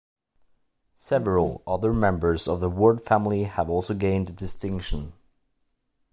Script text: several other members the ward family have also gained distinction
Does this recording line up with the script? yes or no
no